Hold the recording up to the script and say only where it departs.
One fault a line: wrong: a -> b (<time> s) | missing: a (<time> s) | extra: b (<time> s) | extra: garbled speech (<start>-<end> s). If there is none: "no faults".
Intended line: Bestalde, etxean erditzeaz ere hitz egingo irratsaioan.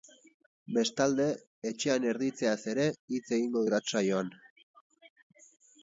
no faults